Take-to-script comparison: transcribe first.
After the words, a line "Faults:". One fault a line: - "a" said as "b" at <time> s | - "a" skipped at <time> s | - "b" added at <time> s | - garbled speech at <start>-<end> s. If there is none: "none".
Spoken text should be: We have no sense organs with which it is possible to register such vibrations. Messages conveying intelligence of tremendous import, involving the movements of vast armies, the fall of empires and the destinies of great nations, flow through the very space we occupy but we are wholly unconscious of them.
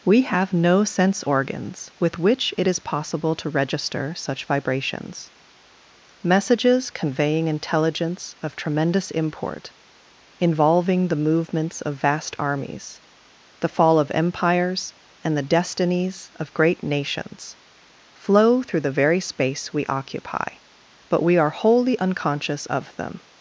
We have no sense organs with which it is possible to register such vibrations. Messages conveying intelligence of tremendous import, involving the movements of vast armies, the fall of empires and the destinies of great nations, flow through the very space we occupy but we are wholly unconscious of them.
Faults:
none